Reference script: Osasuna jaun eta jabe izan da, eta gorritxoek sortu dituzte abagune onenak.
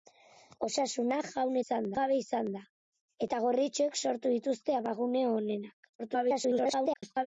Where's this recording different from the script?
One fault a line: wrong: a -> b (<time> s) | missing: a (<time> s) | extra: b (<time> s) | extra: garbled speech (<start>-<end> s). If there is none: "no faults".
wrong: eta -> izan (1.6 s)
extra: garbled speech (6.0-7.3 s)